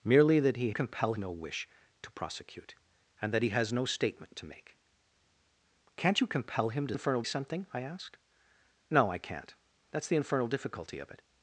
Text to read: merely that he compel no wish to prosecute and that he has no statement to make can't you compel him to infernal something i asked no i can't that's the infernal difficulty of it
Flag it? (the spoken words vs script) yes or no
no